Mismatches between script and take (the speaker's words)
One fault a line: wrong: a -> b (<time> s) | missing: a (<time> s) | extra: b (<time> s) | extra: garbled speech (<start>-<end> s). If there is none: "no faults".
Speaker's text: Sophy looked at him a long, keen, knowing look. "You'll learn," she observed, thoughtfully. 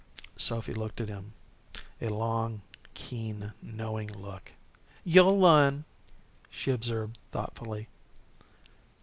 no faults